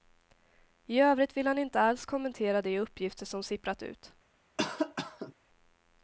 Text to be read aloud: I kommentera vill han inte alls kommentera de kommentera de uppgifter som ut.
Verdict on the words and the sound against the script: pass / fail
fail